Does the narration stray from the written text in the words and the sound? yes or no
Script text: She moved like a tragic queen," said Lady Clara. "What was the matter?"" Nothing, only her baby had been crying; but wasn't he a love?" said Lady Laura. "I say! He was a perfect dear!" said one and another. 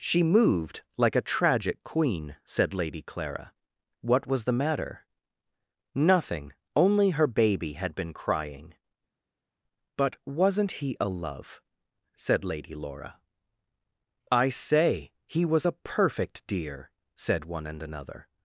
no